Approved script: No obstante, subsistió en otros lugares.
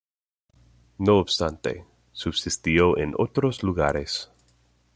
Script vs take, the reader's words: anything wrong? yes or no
no